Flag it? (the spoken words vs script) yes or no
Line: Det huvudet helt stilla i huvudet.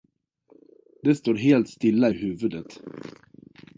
yes